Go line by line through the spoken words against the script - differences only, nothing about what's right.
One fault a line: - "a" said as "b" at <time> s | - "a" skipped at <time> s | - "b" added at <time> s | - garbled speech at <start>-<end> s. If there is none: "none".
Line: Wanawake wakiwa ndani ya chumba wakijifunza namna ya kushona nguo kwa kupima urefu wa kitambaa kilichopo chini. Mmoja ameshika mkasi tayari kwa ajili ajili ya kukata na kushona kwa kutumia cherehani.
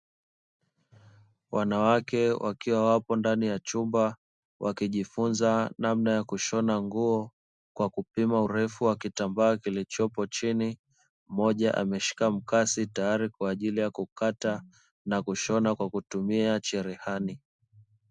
- "wapo" added at 2.9 s
- "ajili" skipped at 13.8 s